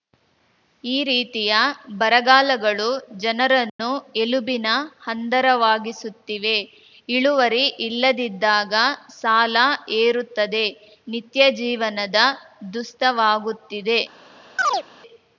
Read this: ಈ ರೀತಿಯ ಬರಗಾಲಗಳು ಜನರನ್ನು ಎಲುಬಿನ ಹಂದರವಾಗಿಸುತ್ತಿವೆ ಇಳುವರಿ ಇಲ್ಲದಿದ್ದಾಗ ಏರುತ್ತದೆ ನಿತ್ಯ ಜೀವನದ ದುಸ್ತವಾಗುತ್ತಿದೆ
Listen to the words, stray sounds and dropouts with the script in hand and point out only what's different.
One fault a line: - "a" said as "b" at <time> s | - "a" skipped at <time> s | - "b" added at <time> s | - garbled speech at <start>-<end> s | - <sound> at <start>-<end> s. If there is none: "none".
- dropout at 3.7-3.8 s
- "ಸಾಲ" added at 9.2 s
- chirp at 14.6-14.8 s